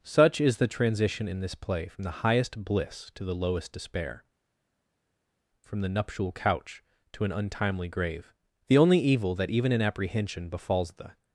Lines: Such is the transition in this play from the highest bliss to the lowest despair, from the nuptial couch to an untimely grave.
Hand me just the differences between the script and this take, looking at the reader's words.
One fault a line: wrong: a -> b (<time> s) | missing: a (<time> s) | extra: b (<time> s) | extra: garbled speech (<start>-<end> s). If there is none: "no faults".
extra: The only evil that even in apprehension befalls the (8.7 s)